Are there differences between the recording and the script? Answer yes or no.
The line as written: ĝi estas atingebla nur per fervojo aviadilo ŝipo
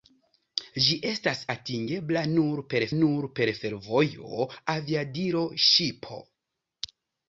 yes